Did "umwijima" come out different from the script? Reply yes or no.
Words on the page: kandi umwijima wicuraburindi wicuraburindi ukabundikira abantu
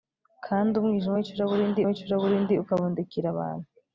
no